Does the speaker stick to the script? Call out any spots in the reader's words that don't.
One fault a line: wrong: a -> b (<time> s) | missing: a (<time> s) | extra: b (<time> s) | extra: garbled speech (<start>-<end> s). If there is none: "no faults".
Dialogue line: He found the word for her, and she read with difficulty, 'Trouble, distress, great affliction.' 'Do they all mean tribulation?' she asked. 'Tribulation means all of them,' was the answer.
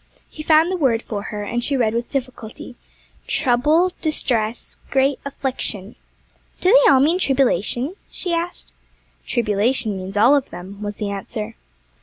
no faults